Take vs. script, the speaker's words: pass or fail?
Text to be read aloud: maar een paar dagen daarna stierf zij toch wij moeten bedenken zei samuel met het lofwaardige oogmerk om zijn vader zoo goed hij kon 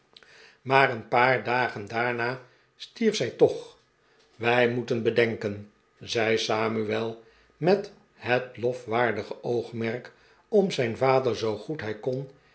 pass